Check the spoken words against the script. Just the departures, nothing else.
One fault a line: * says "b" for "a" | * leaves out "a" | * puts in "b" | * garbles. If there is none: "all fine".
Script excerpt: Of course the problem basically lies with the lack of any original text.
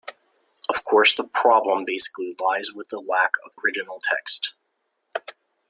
* leaves out "any"